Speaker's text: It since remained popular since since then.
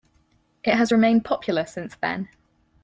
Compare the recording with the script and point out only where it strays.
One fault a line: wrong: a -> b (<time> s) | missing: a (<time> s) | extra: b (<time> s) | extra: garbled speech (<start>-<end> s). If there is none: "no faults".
wrong: since -> has (0.7 s)
missing: since (2.0 s)